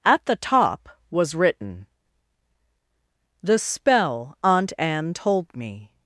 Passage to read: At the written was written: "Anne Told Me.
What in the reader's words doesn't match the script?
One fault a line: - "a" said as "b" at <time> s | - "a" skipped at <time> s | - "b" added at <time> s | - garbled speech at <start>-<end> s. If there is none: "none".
- "written" said as "top" at 0.3 s
- "The Spell Aunt" added at 3.4 s